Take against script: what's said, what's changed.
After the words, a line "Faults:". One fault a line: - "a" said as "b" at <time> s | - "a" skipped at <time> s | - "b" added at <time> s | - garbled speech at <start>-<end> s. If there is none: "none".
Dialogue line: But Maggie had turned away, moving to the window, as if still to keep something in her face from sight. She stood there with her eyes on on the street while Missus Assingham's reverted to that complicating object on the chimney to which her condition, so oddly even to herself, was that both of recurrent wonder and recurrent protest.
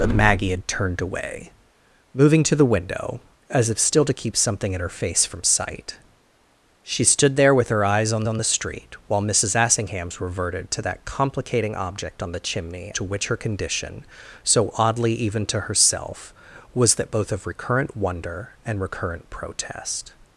But Maggie had turned away, moving to the window, as if still to keep something in her face from sight. She stood there with her eyes on on the street while Missus Assingham's reverted to that complicating object on the chimney to which her condition, so oddly even to herself, was that both of recurrent wonder and recurrent protest.
Faults:
none